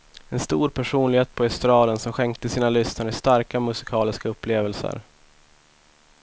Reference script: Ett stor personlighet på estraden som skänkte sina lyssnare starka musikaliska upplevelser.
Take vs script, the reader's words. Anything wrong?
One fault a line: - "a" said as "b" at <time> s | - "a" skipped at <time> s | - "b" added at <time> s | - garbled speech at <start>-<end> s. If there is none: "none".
- "Ett" said as "En" at 0.3 s